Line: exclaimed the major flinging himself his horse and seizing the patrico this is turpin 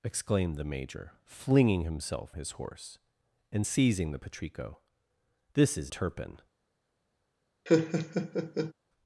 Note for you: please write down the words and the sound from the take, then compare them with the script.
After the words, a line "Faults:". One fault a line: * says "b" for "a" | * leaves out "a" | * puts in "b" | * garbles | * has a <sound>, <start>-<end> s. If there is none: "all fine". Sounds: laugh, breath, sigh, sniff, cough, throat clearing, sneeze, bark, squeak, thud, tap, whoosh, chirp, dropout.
exclaimed the major flinging himself his horse and seizing the patrico this is turpin
Faults:
* has a laugh, 7.7-8.7 s